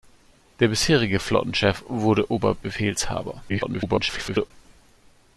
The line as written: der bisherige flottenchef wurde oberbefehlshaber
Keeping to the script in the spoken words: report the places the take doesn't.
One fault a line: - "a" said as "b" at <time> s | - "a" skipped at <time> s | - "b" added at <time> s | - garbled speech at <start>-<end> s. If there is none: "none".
- garbled speech at 3.5-4.5 s